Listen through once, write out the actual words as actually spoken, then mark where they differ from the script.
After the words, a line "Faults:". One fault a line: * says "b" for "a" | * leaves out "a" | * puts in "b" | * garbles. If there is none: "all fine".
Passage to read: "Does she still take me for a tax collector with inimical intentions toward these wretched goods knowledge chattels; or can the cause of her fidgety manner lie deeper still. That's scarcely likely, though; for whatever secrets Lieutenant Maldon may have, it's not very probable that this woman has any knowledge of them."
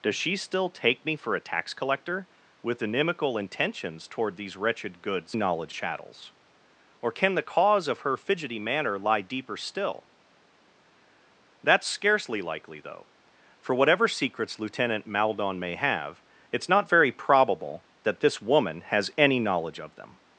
"Does she still take me for a tax collector with inimical intentions toward these wretched goods knowledge chattels; or can the cause of her fidgety manner lie deeper still. That's scarcely likely, though; for whatever secrets Lieutenant Maldon may have, it's not very probable that this woman has any knowledge of them."
Faults:
all fine